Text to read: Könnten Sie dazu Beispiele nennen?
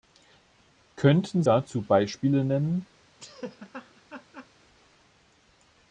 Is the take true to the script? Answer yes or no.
no